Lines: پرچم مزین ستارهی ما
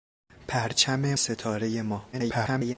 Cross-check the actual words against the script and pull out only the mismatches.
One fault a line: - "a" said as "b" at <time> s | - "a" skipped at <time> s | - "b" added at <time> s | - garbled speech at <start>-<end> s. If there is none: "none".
- "مزین" skipped at 1.1 s
- garbled speech at 2.1-2.8 s